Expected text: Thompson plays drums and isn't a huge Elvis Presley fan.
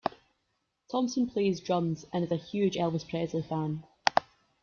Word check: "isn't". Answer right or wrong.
wrong